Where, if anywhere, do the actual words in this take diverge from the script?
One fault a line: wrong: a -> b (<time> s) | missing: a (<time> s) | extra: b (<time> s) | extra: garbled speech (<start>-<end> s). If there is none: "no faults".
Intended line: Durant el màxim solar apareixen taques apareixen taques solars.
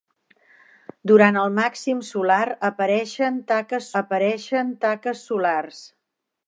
no faults